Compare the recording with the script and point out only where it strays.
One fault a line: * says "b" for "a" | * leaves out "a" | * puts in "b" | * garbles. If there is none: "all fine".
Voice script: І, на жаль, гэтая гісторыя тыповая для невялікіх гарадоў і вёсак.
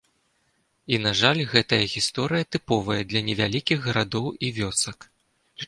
all fine